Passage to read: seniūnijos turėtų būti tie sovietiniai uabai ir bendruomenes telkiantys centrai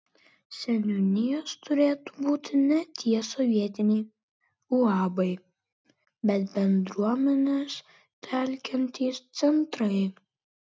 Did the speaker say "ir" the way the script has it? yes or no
no